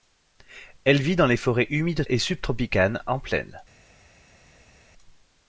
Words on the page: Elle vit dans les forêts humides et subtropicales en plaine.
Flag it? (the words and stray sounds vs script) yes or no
no